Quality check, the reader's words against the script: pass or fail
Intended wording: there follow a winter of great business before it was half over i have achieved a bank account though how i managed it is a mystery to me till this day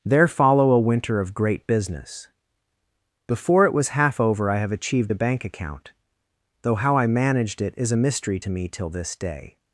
pass